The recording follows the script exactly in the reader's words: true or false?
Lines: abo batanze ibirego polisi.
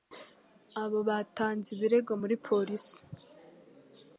false